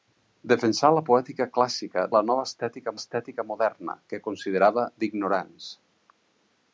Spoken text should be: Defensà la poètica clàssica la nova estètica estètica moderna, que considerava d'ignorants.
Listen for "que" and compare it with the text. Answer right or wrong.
right